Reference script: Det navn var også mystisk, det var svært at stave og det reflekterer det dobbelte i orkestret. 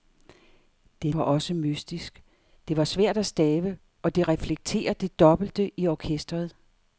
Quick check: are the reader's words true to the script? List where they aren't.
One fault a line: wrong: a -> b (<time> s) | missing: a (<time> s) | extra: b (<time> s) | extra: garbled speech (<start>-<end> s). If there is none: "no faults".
missing: navn (1.1 s)